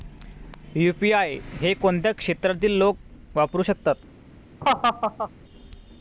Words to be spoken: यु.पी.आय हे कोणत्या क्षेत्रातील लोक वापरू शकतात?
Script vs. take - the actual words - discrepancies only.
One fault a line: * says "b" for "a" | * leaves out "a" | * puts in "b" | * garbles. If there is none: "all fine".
all fine